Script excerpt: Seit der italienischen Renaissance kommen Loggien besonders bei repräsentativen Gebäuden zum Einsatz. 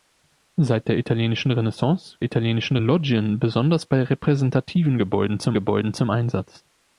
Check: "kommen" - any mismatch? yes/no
yes